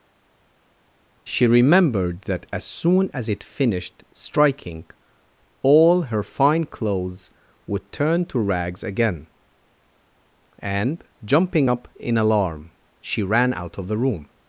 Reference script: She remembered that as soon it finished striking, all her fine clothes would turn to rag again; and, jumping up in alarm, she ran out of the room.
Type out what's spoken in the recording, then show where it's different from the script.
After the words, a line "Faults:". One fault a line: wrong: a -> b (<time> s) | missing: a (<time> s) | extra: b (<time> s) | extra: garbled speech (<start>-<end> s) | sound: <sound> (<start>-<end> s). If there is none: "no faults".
She remembered that as soon as it finished striking, all her fine clothes would turn to rags again; and, jumping up in alarm, she ran out of the room.
Faults:
extra: as (3.1 s)
wrong: rag -> rags (8.4 s)